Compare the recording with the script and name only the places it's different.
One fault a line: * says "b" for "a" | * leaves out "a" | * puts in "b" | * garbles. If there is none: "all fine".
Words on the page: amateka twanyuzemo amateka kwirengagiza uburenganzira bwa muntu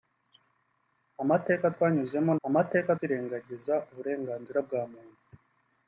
all fine